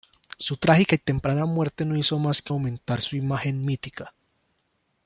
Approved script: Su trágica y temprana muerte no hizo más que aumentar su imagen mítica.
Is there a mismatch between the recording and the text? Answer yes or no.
no